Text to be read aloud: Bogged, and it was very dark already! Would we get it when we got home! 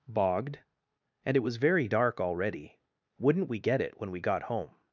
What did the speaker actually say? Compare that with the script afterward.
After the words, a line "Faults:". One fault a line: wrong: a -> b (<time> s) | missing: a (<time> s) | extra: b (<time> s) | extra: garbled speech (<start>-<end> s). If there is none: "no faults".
Bogged, and it was very dark already! Wouldn't we get it when we got home!
Faults:
wrong: Would -> Wouldn't (3.2 s)